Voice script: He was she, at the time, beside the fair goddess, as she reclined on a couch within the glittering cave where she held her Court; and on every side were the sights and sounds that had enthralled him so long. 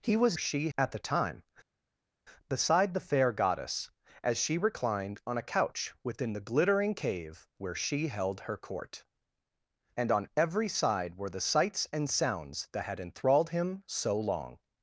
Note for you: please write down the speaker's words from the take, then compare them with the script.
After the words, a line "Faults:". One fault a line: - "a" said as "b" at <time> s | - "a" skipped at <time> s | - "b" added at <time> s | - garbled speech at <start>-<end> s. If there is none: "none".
He was she, at the time, beside the fair goddess, as she reclined on a couch within the glittering cave where she held her Court; and on every side were the sights and sounds that had enthralled him so long.
Faults:
none